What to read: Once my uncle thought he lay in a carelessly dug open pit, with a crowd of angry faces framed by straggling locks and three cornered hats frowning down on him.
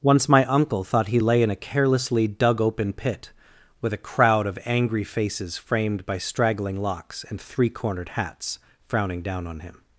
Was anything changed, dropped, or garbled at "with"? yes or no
no